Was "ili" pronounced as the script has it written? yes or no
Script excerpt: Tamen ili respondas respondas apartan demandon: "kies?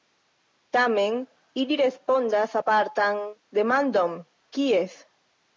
yes